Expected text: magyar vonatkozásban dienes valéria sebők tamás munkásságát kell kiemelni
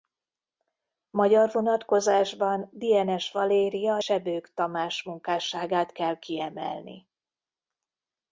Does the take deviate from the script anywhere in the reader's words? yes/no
no